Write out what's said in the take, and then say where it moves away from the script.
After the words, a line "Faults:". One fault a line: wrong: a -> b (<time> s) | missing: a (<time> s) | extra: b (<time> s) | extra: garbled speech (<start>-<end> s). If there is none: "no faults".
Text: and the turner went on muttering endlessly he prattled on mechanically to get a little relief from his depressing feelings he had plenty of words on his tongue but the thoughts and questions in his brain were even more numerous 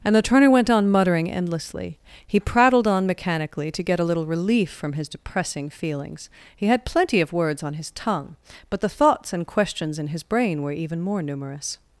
and the turner went on muttering endlessly he prattled on mechanically to get a little relief from his depressing feelings he had plenty of words on his tongue but the thoughts and questions in his brain were even more numerous
Faults:
no faults